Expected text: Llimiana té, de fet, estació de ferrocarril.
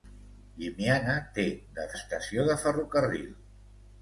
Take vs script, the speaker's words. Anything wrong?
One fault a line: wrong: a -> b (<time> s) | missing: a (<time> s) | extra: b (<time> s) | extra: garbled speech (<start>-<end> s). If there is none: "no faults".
missing: fet (1.9 s)